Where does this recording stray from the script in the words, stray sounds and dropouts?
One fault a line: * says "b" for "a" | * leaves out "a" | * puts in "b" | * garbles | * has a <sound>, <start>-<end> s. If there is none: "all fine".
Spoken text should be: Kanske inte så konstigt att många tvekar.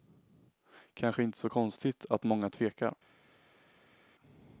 all fine